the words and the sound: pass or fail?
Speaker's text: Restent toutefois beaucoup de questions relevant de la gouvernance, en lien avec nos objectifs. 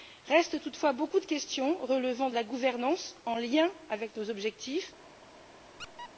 fail